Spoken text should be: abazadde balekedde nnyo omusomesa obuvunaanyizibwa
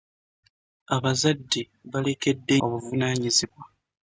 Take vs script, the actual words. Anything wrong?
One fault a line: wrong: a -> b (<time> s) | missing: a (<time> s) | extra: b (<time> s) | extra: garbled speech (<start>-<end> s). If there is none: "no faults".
missing: nnyo omusomesa (2.6 s)